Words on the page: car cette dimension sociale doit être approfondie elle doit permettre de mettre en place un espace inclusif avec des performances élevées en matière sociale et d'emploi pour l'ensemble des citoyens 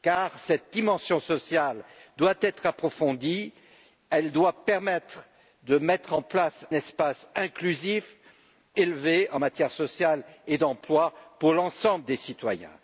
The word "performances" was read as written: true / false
false